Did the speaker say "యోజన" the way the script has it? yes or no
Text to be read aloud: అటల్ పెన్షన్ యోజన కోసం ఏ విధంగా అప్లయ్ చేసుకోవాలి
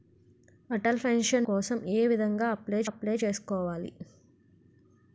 no